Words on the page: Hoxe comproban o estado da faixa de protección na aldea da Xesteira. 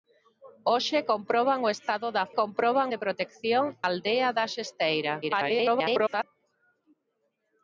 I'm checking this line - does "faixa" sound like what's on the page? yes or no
no